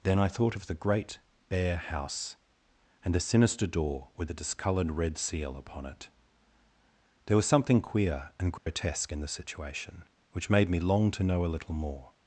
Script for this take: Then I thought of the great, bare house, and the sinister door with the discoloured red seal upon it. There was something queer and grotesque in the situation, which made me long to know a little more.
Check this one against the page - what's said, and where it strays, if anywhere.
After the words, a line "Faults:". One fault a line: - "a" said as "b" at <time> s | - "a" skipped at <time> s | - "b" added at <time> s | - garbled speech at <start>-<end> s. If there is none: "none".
Then I thought of the great, bare house, and the sinister door with the discoloured red seal upon it. There was something queer and grotesque in the situation, which made me long to know a little more.
Faults:
none